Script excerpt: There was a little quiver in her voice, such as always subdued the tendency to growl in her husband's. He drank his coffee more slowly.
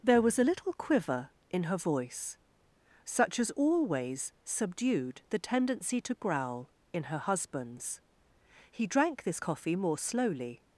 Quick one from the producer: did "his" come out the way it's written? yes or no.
no